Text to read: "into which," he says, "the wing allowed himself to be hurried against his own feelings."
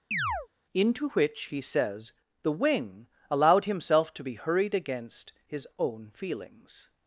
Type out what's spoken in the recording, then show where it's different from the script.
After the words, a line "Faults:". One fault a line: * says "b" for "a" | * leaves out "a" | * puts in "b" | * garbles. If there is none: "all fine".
"into which," he says, "the wing allowed himself to be hurried against his own feelings."
Faults:
all fine